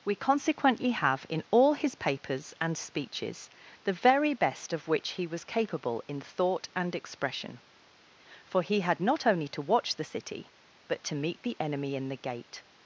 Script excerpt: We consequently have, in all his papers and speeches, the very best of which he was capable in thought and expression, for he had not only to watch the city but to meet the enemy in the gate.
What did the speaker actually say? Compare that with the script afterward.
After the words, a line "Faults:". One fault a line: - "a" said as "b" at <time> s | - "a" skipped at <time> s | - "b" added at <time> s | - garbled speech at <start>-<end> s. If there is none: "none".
We consequently have, in all his papers and speeches, the very best of which he was capable in thought and expression, for he had not only to watch the city but to meet the enemy in the gate.
Faults:
none